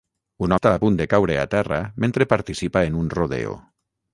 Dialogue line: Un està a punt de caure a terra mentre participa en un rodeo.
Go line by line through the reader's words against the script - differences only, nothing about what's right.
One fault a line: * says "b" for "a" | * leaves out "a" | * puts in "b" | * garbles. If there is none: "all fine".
all fine